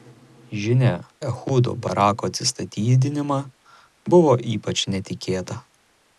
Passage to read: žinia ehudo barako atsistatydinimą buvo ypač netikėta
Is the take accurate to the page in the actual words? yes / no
yes